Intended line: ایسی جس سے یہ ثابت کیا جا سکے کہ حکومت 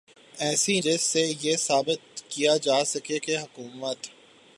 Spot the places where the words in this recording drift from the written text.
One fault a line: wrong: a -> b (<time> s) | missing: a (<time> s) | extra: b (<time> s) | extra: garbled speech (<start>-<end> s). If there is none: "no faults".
no faults